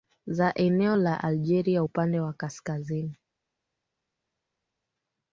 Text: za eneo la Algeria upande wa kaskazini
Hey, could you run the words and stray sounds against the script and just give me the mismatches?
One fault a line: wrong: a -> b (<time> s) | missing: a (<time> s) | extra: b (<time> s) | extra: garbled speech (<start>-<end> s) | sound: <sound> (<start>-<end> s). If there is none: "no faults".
no faults